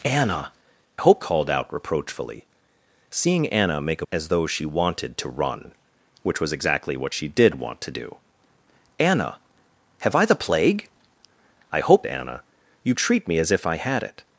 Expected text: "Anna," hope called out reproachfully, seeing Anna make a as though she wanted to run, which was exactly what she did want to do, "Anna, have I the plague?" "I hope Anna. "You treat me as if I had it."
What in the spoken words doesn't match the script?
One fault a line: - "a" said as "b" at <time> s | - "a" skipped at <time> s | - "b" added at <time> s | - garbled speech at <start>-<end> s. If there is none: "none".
none